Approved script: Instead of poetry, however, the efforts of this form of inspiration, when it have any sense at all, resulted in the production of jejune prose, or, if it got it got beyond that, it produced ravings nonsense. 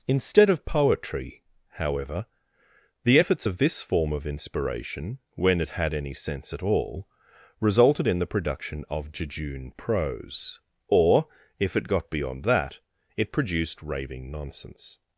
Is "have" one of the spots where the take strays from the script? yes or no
yes